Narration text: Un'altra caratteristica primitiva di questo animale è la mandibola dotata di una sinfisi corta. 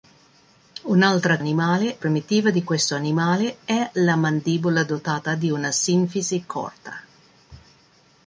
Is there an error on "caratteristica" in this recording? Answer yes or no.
yes